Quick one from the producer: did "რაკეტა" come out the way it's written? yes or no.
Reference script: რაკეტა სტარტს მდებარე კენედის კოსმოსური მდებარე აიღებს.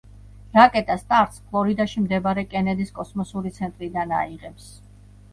yes